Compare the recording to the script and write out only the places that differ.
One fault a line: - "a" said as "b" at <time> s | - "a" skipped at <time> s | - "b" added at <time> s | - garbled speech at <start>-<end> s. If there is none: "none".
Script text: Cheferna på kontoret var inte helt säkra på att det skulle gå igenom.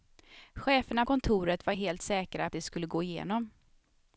- "på" skipped at 1.1 s
- "inte" skipped at 1.7 s
- "på att" skipped at 2.5 s